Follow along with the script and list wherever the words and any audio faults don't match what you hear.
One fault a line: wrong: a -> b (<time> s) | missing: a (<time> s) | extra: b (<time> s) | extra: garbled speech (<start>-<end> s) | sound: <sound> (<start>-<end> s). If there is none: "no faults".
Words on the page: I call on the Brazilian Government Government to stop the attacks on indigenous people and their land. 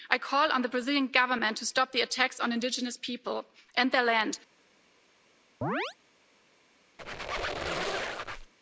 missing: Government (1.6 s)
sound: chirp (5.6-6.0 s)
sound: squeak (7.0-8.5 s)